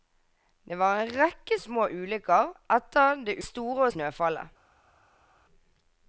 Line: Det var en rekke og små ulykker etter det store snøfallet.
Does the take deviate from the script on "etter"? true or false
false